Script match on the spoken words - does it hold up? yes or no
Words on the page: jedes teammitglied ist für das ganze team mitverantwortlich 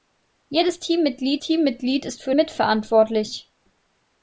no